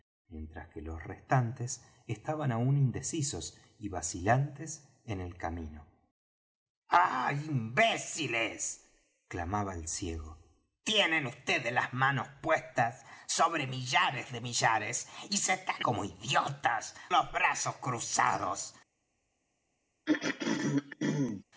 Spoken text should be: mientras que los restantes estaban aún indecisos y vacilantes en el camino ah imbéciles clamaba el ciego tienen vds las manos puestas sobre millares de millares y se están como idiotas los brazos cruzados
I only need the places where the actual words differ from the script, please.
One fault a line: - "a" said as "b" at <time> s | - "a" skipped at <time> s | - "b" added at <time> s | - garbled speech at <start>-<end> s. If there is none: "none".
none